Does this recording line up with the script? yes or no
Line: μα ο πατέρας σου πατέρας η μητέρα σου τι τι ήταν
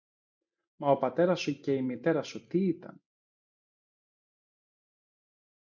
no